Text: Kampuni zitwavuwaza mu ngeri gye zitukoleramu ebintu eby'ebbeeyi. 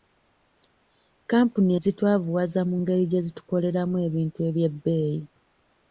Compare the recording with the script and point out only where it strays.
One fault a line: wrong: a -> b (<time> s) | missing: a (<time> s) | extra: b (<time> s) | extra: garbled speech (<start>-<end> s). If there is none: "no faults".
no faults